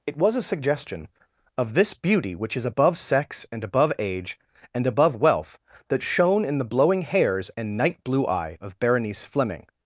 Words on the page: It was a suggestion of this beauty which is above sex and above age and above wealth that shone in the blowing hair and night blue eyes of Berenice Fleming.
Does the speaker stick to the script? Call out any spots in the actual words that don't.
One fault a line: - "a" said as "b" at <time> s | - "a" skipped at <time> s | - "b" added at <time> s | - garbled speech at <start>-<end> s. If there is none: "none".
- "hair" said as "hairs" at 7.0 s
- "eyes" said as "eye" at 8.2 s